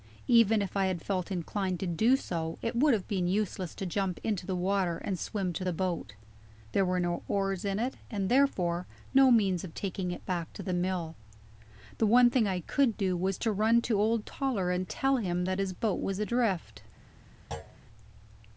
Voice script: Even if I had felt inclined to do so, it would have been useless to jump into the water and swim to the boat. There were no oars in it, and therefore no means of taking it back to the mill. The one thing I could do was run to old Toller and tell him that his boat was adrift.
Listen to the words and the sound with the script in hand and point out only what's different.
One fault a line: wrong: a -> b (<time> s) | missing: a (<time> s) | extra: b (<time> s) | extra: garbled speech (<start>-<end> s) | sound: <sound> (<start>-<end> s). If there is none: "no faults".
extra: to (13.4 s)
sound: thud (17.5-17.8 s)